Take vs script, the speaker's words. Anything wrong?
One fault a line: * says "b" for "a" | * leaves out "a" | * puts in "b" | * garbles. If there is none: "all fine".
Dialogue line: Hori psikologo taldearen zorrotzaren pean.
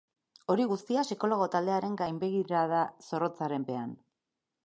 * puts in "guztia"
* puts in "gainbegirada"